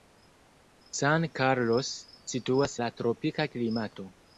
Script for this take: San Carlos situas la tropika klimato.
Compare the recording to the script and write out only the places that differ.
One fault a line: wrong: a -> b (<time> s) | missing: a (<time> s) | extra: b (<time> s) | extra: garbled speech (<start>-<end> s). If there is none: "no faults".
no faults